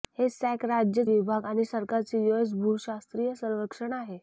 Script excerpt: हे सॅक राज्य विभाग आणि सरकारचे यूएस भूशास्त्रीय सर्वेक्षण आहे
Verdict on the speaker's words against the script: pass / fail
pass